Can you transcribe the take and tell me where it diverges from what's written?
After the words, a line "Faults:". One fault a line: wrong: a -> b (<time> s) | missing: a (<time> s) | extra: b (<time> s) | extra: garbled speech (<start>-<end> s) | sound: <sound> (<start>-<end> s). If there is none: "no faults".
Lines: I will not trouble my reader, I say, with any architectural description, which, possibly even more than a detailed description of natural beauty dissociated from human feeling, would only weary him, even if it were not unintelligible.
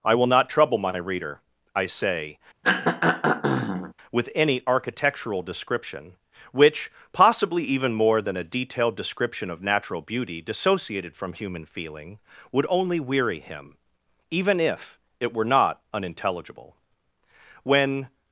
I will not trouble my reader, I say, with any architectural description, which, possibly even more than a detailed description of natural beauty dissociated from human feeling, would only weary him, even if it were not unintelligible. When
Faults:
sound: throat clearing (2.6-3.9 s)
extra: When (17.6 s)